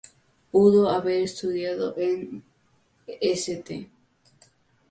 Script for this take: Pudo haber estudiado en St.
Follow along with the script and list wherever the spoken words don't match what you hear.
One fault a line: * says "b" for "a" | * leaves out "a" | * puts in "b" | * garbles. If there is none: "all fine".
all fine